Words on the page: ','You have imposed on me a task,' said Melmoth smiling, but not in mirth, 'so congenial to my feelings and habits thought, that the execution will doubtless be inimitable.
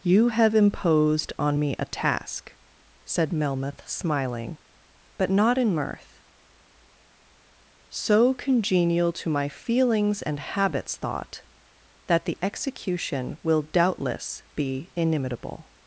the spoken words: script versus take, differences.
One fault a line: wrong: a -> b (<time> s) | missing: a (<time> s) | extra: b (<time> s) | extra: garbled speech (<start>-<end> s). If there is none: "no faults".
no faults